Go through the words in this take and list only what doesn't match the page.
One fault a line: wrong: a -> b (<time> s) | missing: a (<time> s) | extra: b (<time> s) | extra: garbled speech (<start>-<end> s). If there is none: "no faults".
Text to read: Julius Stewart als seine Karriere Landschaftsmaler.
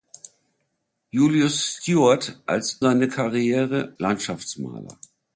no faults